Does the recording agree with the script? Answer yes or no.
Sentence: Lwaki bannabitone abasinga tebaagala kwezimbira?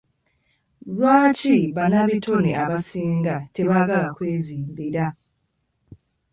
yes